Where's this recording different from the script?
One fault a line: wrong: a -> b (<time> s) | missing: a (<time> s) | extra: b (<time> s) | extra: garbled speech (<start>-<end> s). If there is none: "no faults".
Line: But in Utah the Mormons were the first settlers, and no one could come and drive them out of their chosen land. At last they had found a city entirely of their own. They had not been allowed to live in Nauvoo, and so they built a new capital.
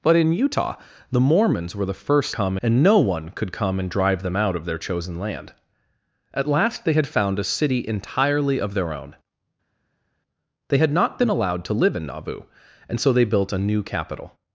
wrong: settlers -> come (2.3 s)